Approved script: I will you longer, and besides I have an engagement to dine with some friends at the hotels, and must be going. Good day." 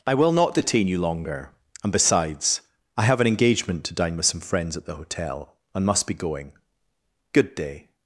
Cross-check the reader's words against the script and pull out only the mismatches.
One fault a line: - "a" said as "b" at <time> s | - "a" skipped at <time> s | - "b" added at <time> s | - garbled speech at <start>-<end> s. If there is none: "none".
- "not detain" added at 0.3 s
- "hotels" said as "hotel" at 5.0 s